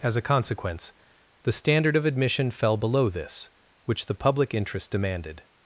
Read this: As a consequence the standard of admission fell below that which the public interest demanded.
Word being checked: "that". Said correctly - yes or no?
no